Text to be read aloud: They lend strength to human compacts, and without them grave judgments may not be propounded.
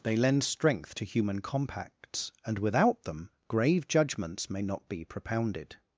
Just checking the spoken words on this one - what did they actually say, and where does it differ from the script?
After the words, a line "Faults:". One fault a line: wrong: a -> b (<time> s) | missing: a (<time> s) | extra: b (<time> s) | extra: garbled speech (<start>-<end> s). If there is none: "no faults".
They lend strength to human compacts, and without them grave judgments may not be propounded.
Faults:
no faults